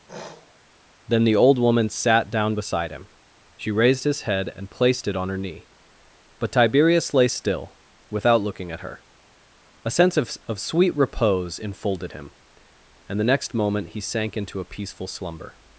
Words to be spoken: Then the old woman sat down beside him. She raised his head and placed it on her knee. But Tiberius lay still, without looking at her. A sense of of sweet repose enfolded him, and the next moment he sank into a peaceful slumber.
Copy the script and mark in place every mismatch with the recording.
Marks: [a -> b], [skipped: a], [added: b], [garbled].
Then the old woman sat down beside him. She raised his head and placed it on her knee. But Tiberius lay still, without looking at her. A sense of of sweet repose enfolded him, and the next moment he sank into a peaceful slumber.